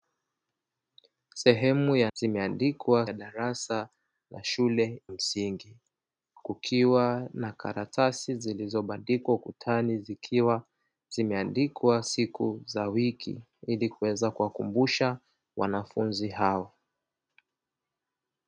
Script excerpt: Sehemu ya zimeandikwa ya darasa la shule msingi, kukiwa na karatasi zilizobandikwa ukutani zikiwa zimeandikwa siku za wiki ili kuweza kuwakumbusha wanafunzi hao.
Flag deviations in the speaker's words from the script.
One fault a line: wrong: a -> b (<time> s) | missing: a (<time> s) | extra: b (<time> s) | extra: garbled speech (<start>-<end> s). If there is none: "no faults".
no faults